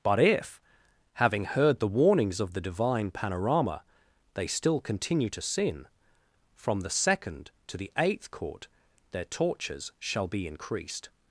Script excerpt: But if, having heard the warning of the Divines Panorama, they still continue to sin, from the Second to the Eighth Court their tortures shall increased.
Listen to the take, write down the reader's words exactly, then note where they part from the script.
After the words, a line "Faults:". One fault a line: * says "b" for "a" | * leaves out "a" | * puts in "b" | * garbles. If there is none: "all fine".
But if, having heard the warnings of the Divine Panorama, they still continue to sin, from the Second to the Eighth Court their tortures shall be increased.
Faults:
* says "warnings" for "warning"
* says "Divine" for "Divines"
* puts in "be"